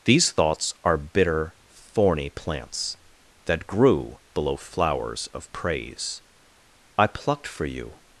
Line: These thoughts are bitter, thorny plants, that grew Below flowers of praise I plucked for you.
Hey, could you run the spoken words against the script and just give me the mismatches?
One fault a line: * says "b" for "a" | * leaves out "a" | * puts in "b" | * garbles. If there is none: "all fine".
all fine